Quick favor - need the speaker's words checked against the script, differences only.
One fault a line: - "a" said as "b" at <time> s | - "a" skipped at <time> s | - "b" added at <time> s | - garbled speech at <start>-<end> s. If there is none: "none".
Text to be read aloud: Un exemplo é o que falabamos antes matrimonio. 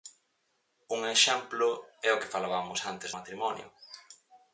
none